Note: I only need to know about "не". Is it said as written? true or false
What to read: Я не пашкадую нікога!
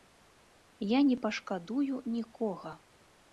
true